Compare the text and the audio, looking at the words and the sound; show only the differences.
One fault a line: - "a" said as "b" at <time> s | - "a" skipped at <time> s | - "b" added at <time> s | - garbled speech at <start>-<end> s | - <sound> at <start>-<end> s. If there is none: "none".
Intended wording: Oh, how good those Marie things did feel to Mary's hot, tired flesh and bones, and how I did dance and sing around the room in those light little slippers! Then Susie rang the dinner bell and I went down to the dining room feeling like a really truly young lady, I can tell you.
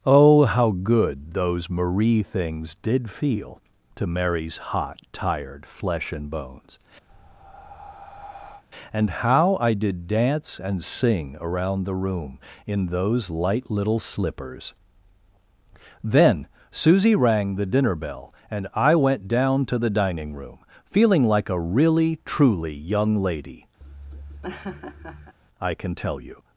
- breath at 7.1-8.6 s
- laugh at 23.8-25.3 s